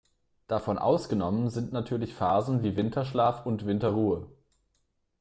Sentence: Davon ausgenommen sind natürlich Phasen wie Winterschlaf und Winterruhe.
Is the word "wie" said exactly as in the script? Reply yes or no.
yes